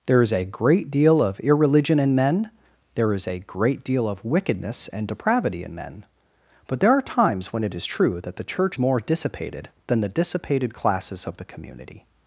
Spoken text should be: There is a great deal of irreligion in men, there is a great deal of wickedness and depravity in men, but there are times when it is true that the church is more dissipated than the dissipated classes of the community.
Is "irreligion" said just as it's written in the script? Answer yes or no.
yes